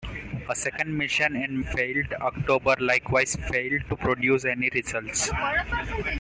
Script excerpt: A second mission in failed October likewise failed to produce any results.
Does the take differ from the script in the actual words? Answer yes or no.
no